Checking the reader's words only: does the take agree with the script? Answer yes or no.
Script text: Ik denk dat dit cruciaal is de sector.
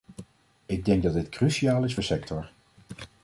yes